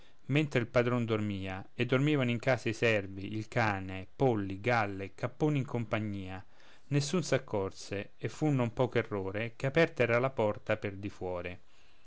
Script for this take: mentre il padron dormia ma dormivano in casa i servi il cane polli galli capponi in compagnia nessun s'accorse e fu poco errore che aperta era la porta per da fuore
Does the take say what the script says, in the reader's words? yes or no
no